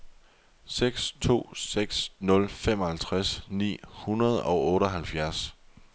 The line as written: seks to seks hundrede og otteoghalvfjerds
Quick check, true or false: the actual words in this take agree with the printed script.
false